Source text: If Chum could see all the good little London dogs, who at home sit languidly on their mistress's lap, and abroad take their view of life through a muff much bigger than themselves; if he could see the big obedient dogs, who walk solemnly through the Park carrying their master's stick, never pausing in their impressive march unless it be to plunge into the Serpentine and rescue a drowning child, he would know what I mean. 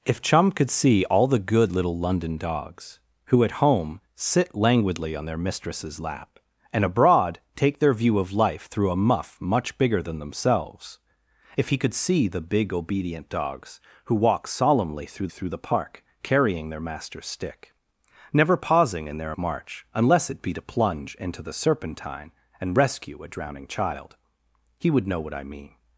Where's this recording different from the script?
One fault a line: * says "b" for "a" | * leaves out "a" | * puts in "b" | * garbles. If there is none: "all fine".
* puts in "through"
* leaves out "impressive"